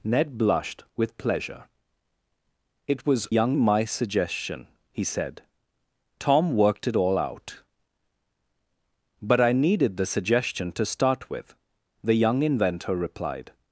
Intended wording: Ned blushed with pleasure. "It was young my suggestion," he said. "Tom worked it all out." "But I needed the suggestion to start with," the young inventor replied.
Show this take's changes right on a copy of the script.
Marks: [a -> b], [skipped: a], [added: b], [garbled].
Ned blushed with pleasure. "It was young my suggestion," he said. "Tom worked it all out." "But I needed the suggestion to start with," the young inventor replied.